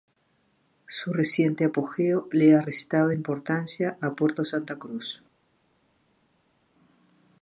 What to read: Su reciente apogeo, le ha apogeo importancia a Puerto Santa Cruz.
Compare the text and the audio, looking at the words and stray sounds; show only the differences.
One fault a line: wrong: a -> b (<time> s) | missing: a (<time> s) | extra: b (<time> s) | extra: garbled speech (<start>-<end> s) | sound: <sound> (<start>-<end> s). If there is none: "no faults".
wrong: apogeo -> restado (2.6 s)